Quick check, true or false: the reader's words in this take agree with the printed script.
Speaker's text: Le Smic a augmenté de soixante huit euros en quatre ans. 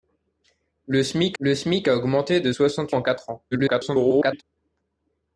false